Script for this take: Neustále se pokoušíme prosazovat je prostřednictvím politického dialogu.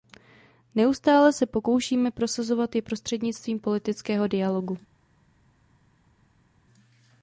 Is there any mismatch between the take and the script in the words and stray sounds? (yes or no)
no